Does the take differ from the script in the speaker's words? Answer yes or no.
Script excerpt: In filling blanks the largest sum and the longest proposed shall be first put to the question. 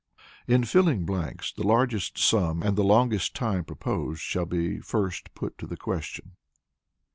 yes